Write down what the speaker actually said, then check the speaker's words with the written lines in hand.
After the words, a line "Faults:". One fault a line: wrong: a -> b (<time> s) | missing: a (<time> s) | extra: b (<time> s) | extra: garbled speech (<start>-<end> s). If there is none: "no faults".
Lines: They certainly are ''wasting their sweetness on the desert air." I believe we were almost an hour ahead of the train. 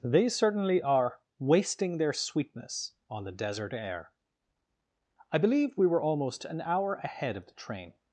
They certainly are ''wasting their sweetness on the desert air." I believe we were almost an hour ahead of the train.
Faults:
no faults